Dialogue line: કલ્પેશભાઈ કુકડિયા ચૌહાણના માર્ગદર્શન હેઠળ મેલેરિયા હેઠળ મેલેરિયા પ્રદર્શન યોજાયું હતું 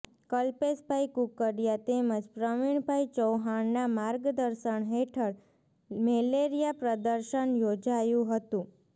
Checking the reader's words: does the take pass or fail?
fail